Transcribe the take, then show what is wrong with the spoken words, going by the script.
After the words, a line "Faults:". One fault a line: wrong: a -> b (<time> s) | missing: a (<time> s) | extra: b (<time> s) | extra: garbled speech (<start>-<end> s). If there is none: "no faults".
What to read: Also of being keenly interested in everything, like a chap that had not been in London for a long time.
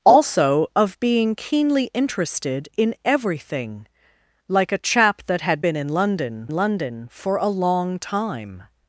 Also of being keenly interested in everything, like a chap that had been in London London for a long time.
Faults:
missing: not (5.6 s)
extra: London (6.5 s)